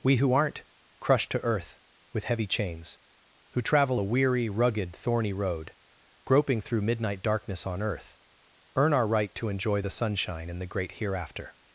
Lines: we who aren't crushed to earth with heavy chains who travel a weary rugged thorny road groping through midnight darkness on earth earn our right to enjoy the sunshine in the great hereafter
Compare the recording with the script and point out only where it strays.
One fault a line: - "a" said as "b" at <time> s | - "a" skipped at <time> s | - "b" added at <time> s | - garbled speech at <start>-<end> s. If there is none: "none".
none